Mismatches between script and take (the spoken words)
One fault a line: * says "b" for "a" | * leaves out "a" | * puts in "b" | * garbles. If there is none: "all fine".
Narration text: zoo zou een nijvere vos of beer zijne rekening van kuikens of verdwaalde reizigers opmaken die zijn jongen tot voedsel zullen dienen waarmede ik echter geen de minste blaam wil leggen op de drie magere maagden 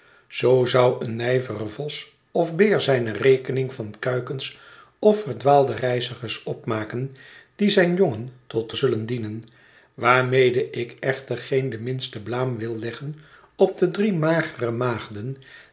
* leaves out "voedsel"